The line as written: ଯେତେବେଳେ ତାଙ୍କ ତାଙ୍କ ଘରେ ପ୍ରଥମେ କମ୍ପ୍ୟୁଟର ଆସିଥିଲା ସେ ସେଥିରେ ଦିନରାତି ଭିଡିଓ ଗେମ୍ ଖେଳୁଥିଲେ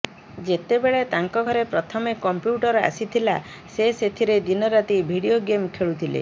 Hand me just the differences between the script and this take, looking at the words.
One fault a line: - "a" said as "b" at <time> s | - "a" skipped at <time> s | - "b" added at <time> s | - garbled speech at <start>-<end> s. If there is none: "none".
- "ତାଙ୍କ" skipped at 1.4 s